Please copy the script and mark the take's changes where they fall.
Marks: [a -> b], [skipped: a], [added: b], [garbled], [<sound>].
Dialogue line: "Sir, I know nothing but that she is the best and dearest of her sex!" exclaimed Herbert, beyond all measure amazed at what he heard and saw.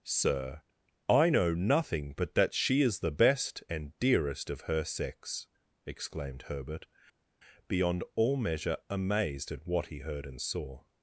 "Sir, I know nothing but that she is the best and dearest of her sex!" exclaimed Herbert, beyond all measure amazed at what he heard and saw.